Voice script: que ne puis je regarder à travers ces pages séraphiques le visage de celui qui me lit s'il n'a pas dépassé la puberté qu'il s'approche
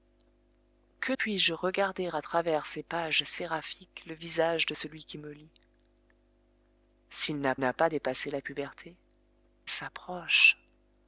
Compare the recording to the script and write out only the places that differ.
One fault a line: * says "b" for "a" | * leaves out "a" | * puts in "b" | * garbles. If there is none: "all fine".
* leaves out "ne"
* puts in "n'a"
* leaves out "qu'il"